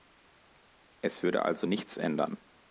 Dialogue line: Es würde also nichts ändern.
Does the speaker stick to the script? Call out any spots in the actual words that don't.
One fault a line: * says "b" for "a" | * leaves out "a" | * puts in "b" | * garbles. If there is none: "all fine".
all fine